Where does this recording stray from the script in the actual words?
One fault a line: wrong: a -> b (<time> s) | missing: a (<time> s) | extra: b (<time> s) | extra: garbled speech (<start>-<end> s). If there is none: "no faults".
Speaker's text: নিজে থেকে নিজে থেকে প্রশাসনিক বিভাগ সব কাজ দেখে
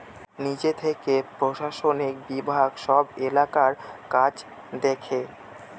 missing: নিজে থেকে (1.1 s)
extra: এলাকার (3.3 s)